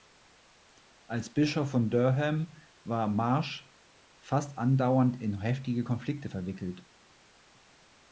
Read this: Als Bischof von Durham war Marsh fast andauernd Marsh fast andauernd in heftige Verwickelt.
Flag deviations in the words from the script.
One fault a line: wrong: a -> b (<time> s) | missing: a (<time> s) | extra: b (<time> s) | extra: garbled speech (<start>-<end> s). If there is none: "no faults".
missing: Marsh fast andauernd (5.2 s)
extra: Konflikte (5.8 s)